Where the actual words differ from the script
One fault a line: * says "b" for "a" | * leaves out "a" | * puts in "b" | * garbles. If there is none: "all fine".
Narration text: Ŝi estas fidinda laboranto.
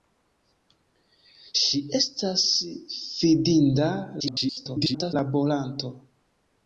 * garbles